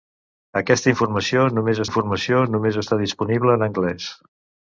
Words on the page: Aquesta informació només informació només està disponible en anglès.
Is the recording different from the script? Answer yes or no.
no